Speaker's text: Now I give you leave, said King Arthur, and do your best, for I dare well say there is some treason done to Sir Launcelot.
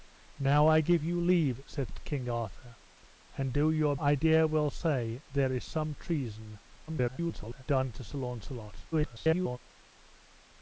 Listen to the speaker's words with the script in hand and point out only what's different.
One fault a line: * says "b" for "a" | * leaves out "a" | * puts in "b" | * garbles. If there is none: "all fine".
* leaves out "best for"
* garbles
* garbles